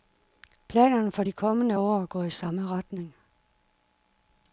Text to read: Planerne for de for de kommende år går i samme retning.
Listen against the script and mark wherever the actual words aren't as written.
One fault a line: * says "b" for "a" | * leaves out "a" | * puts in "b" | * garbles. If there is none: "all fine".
* leaves out "for de"